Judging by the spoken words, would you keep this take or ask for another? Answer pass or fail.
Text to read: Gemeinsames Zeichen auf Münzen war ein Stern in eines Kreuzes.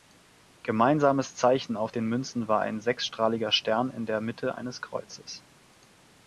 fail